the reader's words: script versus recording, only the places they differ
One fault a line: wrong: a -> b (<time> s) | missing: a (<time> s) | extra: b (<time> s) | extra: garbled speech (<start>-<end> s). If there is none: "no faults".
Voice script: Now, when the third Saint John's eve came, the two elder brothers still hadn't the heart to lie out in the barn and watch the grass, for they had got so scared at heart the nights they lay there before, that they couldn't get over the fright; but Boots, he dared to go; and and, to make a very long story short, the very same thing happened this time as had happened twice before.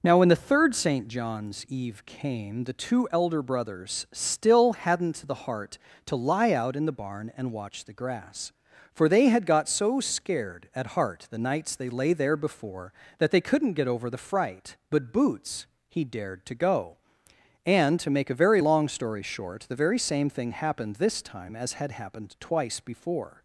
missing: and (18.0 s)